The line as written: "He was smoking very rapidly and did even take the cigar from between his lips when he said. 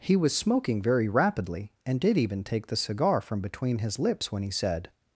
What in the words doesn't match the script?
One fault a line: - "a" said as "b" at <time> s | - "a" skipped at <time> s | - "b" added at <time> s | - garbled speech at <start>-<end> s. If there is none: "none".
none